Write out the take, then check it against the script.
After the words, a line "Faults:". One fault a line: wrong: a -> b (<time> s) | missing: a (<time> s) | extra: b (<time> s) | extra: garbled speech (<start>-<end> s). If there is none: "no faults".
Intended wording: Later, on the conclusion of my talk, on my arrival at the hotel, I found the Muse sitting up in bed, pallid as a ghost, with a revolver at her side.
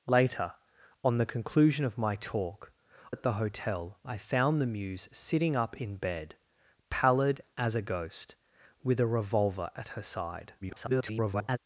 Later, on the conclusion of my talk, at the hotel, I found the Muse sitting up in bed, pallid as a ghost, with a revolver at her side. [garbled]
Faults:
missing: on my arrival (2.7 s)
extra: garbled speech (10.6-11.6 s)